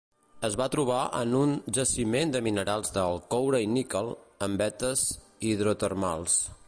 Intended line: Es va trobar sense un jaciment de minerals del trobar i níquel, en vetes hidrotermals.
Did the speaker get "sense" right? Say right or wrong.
wrong